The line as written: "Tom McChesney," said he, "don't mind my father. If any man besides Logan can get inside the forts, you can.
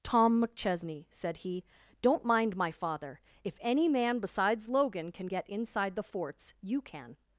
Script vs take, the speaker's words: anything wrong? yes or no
no